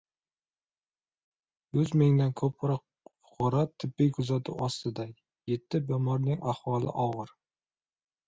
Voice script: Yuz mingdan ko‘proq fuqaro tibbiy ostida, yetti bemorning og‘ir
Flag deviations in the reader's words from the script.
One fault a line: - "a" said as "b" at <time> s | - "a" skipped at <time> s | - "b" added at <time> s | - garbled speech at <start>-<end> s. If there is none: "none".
- "kuzatuv" added at 4.2 s
- "ahvoli" added at 6.5 s